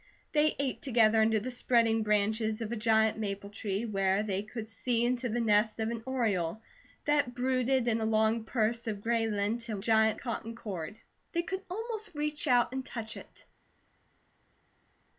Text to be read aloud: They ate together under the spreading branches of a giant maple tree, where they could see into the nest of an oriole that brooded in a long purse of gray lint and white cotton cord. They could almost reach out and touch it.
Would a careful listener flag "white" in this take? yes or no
yes